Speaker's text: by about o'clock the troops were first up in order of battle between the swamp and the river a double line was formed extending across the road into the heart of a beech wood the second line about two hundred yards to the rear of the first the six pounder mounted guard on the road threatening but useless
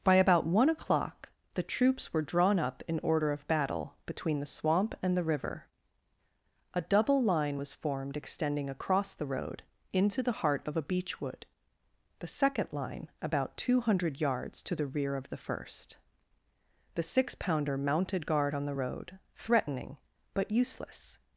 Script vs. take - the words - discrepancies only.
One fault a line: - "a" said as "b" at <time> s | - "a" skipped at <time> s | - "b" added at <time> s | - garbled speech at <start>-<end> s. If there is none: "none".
- "one" added at 0.5 s
- "first" said as "drawn" at 2.2 s